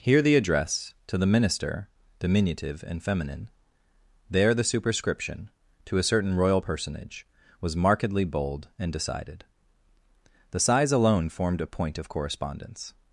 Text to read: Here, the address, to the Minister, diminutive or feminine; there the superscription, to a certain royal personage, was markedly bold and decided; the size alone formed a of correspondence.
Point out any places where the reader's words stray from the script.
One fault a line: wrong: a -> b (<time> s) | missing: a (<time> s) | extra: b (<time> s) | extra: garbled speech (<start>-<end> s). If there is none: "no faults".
wrong: or -> and (2.9 s)
extra: point (11.7 s)